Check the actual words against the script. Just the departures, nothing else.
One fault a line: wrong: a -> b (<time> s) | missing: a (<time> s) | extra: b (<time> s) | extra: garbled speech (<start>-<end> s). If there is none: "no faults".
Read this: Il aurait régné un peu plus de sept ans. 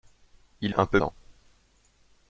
missing: aurait régné (0.8 s)
missing: plus de sept (1.0 s)